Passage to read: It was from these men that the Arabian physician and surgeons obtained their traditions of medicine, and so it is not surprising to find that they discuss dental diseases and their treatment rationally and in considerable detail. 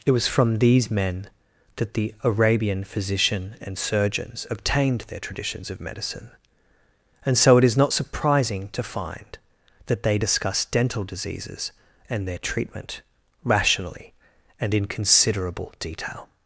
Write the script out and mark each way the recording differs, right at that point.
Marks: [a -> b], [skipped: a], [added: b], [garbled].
It was from these men that the Arabian physician and surgeons obtained their traditions of medicine, and so it is not surprising to find that they discuss dental diseases and their treatment rationally and in considerable detail.